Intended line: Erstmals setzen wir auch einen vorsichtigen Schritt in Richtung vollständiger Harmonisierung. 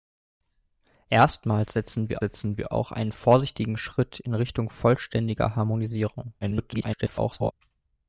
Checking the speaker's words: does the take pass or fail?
fail